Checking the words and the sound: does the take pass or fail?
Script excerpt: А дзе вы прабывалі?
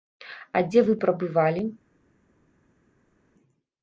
pass